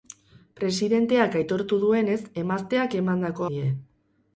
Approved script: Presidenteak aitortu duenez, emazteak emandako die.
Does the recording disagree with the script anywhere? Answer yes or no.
no